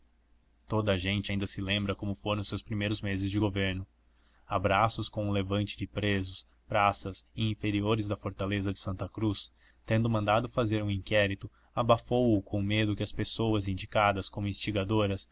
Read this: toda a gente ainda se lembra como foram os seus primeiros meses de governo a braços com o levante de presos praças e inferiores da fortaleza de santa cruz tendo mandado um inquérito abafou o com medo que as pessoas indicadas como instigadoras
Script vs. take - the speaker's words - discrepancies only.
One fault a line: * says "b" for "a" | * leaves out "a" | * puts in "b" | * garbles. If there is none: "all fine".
* puts in "fazer"